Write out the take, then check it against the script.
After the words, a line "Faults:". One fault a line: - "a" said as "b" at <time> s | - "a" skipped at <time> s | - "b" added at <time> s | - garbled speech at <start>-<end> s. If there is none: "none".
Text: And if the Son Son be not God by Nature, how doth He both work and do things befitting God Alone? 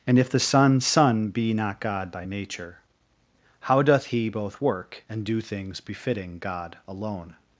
And if the Son Son be not God by Nature, how doth He both work and do things befitting God Alone?
Faults:
none